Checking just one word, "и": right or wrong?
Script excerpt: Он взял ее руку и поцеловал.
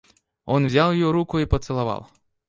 right